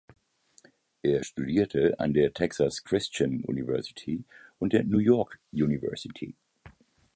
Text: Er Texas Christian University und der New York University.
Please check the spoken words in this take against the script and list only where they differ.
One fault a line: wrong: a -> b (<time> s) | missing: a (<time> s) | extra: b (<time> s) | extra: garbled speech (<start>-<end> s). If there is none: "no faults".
extra: studierte an der (1.2 s)